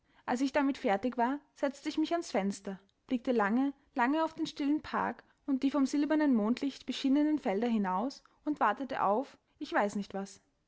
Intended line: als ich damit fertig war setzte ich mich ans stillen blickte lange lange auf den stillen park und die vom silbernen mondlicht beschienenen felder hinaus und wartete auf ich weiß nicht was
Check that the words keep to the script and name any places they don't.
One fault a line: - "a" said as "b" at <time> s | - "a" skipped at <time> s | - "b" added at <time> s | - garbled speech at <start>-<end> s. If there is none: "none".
- "stillen" said as "fenster" at 2.3 s